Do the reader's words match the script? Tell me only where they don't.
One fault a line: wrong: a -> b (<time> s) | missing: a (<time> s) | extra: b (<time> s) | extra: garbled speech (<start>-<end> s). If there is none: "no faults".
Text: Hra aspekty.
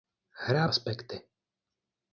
no faults